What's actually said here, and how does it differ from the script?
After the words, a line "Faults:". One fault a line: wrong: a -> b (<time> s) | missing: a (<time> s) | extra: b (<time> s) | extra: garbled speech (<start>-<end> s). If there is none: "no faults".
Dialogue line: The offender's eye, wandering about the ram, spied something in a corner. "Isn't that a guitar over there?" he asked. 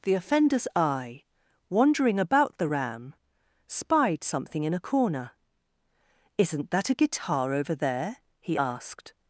The offender's eye, wandering about the ram, spied something in a corner. "Isn't that a guitar over there?" he asked.
Faults:
no faults